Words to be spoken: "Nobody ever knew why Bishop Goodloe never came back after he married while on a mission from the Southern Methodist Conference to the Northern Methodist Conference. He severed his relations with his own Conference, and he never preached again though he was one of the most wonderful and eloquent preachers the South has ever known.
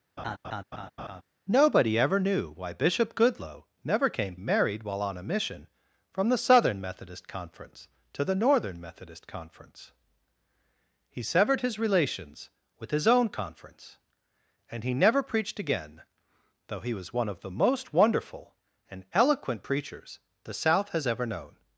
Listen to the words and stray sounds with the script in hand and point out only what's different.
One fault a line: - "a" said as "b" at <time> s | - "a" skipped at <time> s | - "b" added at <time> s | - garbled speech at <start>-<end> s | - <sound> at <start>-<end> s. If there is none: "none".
- laugh at 0.2-1.2 s
- "back after he" skipped at 4.4 s